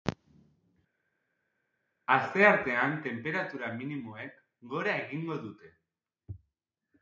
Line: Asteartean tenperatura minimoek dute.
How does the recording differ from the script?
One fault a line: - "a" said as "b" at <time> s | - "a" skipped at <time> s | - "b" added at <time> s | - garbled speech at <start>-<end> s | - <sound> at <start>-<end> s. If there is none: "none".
- "gora egingo" added at 4.8 s